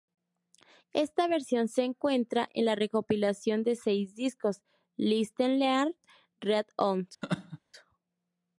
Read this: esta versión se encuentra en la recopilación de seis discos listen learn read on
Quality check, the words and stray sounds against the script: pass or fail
fail